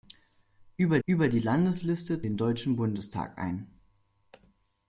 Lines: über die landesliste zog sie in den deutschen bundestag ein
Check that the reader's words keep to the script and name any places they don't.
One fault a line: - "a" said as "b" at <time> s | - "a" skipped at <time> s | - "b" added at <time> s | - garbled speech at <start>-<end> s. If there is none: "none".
- "über" added at 1.1 s
- "zog sie in" skipped at 2.2 s